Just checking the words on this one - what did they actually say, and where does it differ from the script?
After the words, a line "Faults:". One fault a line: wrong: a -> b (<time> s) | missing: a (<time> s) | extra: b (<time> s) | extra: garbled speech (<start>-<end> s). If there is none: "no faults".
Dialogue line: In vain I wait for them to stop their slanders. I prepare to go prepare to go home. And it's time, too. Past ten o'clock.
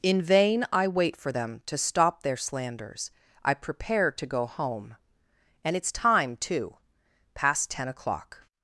In vain I wait for them to stop their slanders. I prepare to go home. And it's time, too. Past ten o'clock.
Faults:
missing: prepare to go (4.5 s)